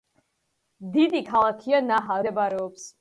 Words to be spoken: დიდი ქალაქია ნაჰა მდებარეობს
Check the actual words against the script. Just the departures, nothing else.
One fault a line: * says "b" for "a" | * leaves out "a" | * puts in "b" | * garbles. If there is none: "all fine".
all fine